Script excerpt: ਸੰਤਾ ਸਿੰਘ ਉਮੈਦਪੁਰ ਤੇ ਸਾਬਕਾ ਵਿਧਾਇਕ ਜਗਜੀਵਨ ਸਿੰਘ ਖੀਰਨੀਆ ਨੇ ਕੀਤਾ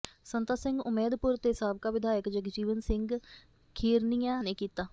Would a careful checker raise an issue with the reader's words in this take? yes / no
no